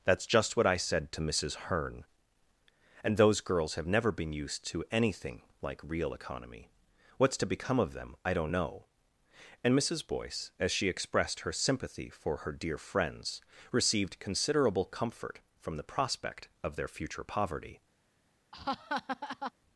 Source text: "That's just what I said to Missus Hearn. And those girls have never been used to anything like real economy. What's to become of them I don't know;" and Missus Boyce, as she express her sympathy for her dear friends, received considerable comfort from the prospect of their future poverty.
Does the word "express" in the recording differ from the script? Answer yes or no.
yes